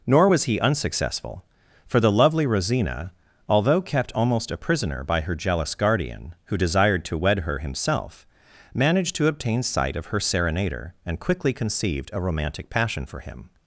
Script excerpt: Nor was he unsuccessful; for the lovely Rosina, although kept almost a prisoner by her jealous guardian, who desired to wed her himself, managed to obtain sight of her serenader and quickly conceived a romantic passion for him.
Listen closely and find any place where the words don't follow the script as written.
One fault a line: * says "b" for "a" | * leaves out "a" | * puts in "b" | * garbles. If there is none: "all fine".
all fine